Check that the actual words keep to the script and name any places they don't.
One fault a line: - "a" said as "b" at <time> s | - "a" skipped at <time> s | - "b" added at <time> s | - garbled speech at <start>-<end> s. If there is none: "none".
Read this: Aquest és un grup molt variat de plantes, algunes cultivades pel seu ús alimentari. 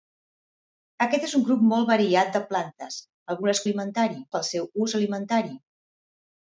- "cultivades" said as "alimentari" at 3.7 s